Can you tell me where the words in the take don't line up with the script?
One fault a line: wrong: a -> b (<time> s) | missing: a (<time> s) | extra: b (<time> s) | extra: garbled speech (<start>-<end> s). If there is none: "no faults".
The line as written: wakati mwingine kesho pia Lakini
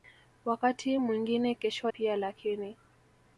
no faults